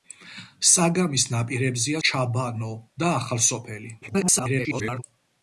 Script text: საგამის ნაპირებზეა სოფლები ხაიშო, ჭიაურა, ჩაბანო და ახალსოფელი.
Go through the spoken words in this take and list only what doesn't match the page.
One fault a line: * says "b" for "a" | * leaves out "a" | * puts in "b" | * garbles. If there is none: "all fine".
* leaves out "სოფლები ხაიშო ჭიაურა"
* garbles